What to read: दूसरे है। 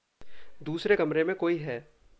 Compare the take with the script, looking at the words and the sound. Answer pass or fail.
fail